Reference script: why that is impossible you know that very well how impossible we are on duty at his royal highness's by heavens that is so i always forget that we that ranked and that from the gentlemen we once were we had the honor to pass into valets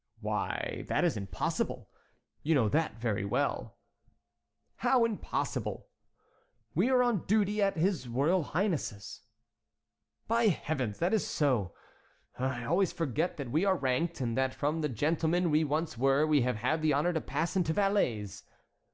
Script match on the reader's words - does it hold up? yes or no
no